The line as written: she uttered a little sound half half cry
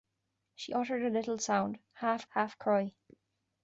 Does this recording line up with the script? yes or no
yes